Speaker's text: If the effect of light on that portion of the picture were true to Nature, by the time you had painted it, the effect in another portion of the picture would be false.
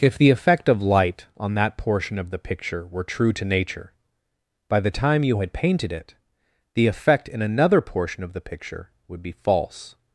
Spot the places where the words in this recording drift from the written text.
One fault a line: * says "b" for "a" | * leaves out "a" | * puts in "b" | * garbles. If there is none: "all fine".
all fine